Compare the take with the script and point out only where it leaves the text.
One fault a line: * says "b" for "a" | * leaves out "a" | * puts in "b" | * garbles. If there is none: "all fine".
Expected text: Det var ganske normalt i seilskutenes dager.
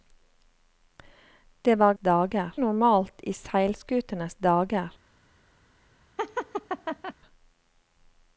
* says "dager" for "ganske"